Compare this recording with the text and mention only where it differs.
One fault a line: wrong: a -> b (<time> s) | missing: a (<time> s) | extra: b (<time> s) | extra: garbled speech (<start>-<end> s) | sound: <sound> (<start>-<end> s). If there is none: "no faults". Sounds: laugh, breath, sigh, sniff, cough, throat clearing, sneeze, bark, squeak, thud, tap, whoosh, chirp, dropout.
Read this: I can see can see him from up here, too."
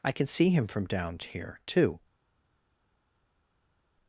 missing: can see (0.5 s)
wrong: up -> down (0.9 s)